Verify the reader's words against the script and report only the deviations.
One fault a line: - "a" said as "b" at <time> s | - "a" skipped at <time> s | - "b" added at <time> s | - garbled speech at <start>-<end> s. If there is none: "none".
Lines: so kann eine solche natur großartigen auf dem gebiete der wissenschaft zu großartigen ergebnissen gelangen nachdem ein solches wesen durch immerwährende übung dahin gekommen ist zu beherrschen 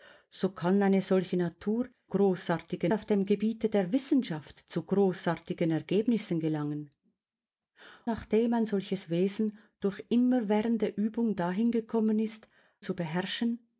none